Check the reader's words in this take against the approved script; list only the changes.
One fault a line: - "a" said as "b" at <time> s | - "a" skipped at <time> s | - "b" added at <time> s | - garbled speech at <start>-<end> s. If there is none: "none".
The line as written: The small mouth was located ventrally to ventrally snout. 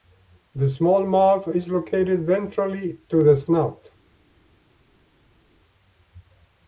- "was" said as "is" at 1.5 s
- "ventrally" said as "the" at 3.2 s